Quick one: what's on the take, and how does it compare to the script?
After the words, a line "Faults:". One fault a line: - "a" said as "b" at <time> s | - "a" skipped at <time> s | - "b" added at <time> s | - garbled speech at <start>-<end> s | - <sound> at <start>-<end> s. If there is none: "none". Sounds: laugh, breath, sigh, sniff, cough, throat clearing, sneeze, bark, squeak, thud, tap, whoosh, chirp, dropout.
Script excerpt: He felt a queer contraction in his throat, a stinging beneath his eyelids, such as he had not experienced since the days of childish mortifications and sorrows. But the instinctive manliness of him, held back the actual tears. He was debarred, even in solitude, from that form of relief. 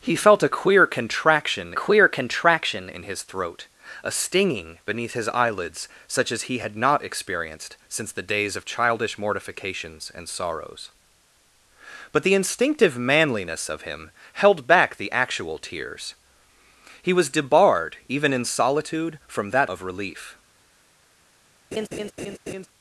He felt a queer contraction queer contraction in his throat, a stinging beneath his eyelids, such as he had not experienced since the days of childish mortifications and sorrows. But the instinctive manliness of him, held back the actual tears. He was debarred, even in solitude, from that of relief.
Faults:
- "queer contraction" added at 1.7 s
- "form" skipped at 19.7 s
- laugh at 21.7-22.7 s